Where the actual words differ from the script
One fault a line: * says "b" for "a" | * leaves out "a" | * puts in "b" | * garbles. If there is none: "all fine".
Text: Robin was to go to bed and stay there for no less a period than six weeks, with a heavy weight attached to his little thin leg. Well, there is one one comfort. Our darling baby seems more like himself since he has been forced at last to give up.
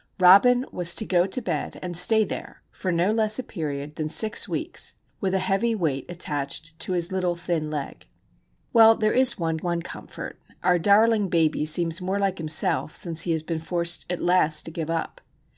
all fine